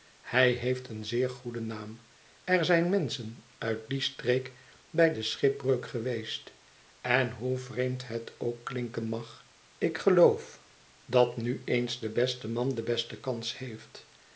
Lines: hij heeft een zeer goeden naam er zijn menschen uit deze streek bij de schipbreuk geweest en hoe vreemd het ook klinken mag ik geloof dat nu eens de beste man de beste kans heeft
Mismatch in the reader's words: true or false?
true